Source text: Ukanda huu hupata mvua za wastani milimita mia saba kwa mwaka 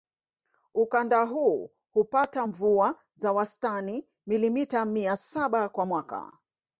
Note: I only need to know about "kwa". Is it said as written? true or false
true